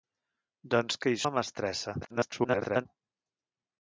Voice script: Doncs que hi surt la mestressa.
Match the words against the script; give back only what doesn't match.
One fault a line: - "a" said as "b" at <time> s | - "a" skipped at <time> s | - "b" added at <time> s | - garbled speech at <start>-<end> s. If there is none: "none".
- "surt" skipped at 1.2 s
- garbled speech at 2.0-2.9 s